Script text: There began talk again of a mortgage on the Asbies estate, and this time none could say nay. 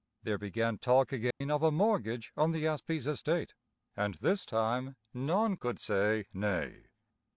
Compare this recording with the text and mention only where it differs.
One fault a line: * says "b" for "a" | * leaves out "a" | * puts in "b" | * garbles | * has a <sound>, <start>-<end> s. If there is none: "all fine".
* has a dropout, 1.3-1.4 s